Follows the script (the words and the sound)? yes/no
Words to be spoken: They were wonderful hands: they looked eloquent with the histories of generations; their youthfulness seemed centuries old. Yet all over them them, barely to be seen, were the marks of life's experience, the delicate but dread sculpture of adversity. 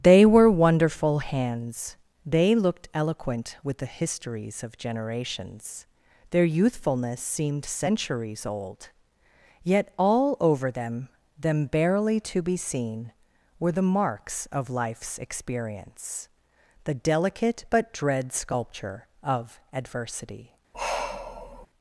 no